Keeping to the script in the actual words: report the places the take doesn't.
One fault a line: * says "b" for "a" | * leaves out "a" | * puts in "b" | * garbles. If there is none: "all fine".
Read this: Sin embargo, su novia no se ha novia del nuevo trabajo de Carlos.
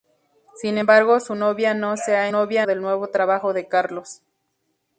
all fine